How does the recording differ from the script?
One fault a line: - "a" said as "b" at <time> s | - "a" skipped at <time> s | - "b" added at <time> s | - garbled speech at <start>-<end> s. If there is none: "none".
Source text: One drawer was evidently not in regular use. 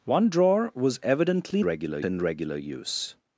- "not" said as "regular" at 1.6 s